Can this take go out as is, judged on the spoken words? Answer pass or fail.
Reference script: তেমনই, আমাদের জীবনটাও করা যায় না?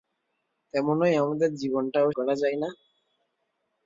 pass